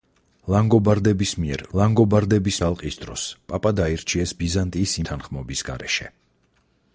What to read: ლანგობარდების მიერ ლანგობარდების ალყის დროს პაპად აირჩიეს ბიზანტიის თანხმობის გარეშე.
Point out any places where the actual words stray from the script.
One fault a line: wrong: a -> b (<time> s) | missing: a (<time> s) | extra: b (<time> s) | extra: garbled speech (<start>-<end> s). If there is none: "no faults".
no faults